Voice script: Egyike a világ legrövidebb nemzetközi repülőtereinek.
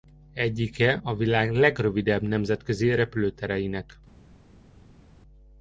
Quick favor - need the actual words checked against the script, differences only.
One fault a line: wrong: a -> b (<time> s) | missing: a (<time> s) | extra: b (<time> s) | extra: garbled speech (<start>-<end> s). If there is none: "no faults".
no faults